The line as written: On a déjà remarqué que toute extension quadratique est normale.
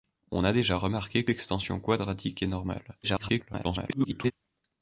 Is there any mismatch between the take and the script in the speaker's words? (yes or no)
yes